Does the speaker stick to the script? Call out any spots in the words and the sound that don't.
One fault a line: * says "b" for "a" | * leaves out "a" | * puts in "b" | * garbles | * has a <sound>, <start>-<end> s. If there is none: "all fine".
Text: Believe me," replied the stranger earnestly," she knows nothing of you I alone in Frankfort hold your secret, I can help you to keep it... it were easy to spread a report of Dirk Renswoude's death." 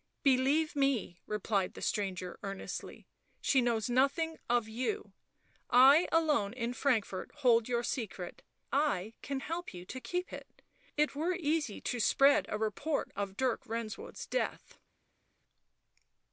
all fine